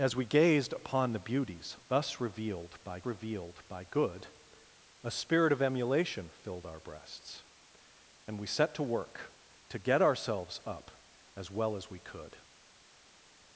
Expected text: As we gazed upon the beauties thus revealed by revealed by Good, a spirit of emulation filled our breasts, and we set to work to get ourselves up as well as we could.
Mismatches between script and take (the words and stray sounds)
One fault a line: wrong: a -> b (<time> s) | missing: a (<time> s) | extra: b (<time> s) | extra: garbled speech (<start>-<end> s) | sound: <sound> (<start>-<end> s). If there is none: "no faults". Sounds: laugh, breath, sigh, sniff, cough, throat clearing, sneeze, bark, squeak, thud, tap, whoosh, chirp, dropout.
no faults